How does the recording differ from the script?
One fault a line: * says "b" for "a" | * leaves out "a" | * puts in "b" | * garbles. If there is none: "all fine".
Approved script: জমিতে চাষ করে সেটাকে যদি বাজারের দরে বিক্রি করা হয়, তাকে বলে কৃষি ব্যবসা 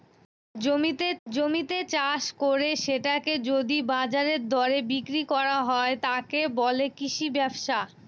* puts in "জমিতে"